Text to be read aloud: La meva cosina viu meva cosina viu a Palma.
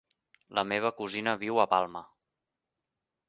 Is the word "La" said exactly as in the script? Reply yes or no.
yes